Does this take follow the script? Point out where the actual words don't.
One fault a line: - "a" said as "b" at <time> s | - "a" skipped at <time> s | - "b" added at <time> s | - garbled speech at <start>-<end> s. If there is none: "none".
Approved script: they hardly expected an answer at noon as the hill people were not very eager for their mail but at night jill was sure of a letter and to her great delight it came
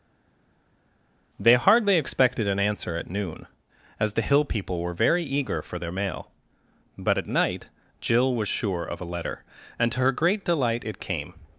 - "not" skipped at 4.9 s